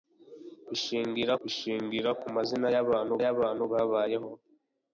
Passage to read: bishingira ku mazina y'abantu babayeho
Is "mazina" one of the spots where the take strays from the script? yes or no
no